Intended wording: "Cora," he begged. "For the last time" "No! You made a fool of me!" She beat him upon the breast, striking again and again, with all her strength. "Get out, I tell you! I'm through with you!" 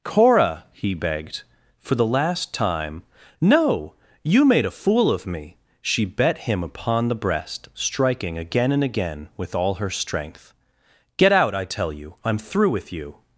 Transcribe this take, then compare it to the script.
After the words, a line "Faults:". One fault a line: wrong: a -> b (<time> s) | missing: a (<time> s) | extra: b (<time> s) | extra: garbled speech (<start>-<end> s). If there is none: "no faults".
"Cora," he begged. "For the last time" "No! You made a fool of me!" She bet him upon the breast, striking again and again, with all her strength. "Get out, I tell you! I'm through with you!"
Faults:
wrong: beat -> bet (6.0 s)